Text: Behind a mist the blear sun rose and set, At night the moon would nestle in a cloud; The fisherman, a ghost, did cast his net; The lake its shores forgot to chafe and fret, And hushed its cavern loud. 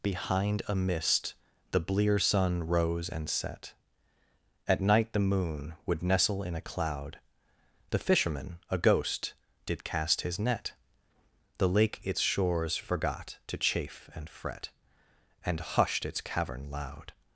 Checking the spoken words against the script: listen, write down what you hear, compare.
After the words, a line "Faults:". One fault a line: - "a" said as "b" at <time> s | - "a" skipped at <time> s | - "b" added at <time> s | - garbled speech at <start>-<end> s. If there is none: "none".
Behind a mist the blear sun rose and set, At night the moon would nestle in a cloud; The fisherman, a ghost, did cast his net; The lake its shores forgot to chafe and fret, And hushed its cavern loud.
Faults:
none